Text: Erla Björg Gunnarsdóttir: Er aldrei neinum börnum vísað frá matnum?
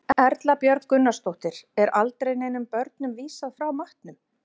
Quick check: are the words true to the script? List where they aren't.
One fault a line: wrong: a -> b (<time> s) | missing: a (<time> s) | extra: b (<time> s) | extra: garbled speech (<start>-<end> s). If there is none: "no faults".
no faults